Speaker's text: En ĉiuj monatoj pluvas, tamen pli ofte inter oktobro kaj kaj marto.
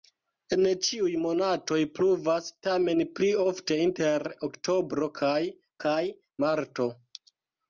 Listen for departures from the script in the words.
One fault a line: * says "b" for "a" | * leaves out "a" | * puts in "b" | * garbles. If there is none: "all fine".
all fine